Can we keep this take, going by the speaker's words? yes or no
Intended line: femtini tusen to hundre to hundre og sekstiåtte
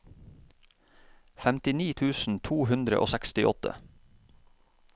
no